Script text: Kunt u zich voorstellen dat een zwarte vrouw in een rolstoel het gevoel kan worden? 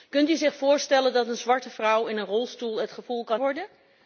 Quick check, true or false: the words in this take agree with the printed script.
true